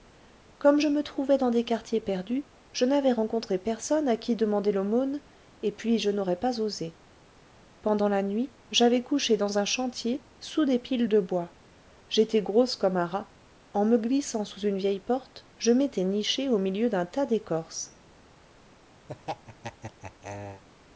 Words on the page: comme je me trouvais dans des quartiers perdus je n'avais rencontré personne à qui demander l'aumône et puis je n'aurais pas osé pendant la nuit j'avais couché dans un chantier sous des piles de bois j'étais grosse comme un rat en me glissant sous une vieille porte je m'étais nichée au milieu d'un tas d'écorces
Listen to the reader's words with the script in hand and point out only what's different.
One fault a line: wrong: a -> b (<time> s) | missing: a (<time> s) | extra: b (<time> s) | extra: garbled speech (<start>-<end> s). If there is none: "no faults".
no faults